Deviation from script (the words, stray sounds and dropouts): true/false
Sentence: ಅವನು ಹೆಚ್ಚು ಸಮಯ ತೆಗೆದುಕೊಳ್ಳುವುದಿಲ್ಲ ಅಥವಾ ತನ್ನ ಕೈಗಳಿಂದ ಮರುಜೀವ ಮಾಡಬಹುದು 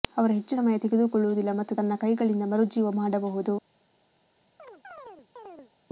true